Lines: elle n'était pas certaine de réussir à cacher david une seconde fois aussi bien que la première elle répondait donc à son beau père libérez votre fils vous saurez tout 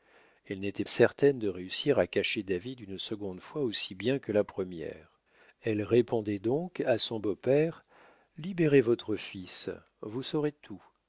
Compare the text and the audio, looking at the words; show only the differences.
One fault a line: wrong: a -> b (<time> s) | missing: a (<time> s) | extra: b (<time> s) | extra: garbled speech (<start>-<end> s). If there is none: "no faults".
missing: pas (0.8 s)